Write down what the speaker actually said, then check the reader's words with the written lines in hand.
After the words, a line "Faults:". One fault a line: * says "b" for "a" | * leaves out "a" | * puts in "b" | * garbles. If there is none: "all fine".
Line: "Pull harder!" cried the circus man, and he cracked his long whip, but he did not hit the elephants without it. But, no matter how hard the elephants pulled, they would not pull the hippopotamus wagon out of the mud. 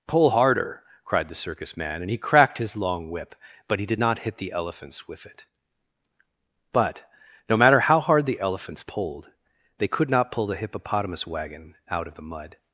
"Pull harder!" cried the circus man, and he cracked his long whip, but he did not hit the elephants with it. But, no matter how hard the elephants pulled, they could not pull the hippopotamus wagon out of the mud.
Faults:
* says "with" for "without"
* says "could" for "would"